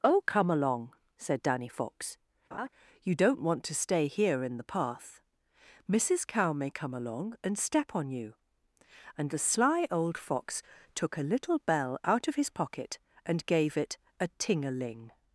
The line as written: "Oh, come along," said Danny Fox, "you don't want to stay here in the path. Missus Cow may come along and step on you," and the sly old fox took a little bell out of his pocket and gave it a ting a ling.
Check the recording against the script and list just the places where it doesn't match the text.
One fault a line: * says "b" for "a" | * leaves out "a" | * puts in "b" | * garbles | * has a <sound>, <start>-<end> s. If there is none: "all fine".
* has a laugh, 2.5-2.7 s